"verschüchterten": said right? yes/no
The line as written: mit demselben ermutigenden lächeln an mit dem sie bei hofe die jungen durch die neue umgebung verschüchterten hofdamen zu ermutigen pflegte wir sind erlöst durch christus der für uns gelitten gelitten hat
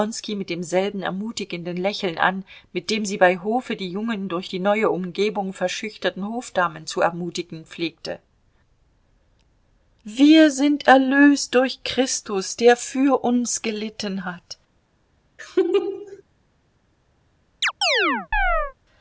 yes